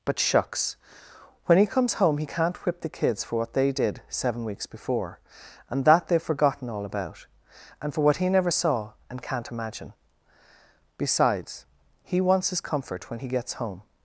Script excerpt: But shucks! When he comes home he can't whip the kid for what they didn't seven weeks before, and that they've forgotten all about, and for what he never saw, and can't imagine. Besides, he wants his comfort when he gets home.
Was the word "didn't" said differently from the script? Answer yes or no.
yes